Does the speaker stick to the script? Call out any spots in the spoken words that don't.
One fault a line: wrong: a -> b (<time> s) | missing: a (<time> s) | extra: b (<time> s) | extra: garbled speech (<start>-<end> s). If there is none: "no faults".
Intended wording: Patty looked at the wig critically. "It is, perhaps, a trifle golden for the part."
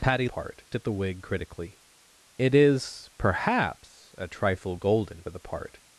wrong: looked -> part (0.2 s)
missing: for (5.2 s)